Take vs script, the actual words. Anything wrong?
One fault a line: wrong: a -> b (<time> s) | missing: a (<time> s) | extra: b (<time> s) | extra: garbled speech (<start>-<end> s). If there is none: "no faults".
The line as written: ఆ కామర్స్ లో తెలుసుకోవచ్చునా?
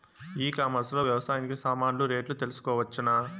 wrong: ఆ -> ఈ (0.4 s)
extra: వ్యవసాయానికి సామాన్లు రేట్లు (1.0 s)